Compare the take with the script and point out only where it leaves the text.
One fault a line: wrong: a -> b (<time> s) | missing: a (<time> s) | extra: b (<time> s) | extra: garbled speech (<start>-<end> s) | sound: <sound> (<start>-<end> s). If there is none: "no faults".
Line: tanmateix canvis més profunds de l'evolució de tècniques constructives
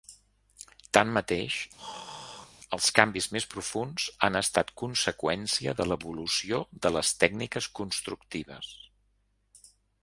sound: throat clearing (1.8-2.5 s)
extra: els (2.8 s)
extra: han estat conseqüència (4.3 s)
extra: les (7.0 s)